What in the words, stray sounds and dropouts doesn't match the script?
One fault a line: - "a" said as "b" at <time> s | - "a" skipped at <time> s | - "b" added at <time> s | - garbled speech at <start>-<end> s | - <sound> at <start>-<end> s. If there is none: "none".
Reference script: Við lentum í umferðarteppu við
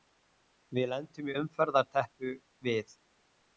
none